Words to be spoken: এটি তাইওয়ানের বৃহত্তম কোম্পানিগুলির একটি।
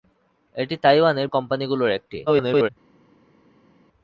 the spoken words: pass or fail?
fail